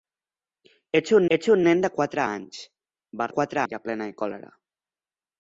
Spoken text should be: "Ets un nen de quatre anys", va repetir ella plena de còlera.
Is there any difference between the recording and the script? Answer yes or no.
yes